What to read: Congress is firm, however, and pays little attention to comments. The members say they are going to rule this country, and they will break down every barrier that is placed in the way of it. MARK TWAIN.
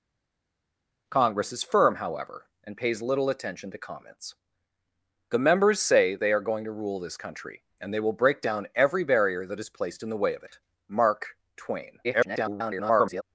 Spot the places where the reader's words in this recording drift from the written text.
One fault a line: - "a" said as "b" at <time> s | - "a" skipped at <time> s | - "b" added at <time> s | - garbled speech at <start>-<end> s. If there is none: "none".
- garbled speech at 12.0-13.2 s